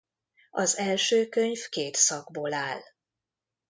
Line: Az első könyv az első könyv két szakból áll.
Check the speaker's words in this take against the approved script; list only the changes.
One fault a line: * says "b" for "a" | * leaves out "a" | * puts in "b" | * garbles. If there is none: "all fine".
* leaves out "az első könyv"